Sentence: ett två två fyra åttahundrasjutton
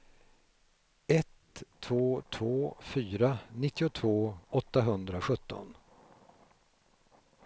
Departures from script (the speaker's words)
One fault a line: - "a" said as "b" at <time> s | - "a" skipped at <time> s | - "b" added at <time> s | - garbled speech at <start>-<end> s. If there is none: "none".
- "nittiotvå" added at 3.6 s